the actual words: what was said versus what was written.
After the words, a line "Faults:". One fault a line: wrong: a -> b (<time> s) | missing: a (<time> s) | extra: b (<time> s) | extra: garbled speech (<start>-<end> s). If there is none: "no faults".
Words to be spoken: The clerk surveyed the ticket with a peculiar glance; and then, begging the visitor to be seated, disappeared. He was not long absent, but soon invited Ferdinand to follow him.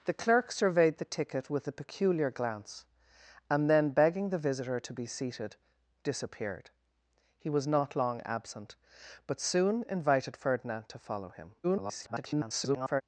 The clerk surveyed the ticket with a peculiar glance; and then, begging the visitor to be seated, disappeared. He was not long absent, but soon invited Ferdinand to follow him. [garbled]
Faults:
extra: garbled speech (11.6-13.0 s)